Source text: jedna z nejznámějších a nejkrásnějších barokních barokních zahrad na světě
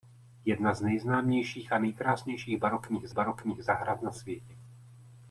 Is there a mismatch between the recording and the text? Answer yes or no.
no